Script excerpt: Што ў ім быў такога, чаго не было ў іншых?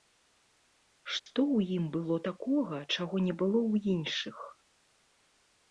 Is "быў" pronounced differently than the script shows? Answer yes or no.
yes